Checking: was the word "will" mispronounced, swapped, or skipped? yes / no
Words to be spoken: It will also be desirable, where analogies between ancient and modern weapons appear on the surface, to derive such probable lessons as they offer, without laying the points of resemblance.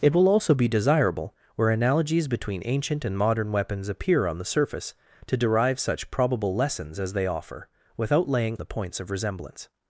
no